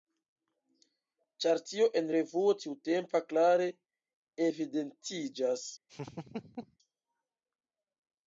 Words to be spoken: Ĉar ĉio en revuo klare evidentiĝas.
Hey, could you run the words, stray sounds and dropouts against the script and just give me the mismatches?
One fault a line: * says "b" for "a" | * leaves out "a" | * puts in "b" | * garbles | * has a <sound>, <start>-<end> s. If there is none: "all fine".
* says "tio" for "ĉio"
* puts in "tiutempa"
* has a laugh, 5.9-6.8 s